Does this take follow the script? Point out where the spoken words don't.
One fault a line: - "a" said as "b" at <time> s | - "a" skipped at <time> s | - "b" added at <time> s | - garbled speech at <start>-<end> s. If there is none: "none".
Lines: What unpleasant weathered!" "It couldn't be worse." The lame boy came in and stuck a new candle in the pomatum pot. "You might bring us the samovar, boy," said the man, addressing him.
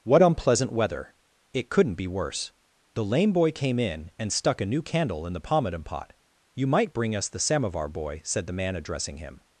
- "weathered" said as "weather" at 0.7 s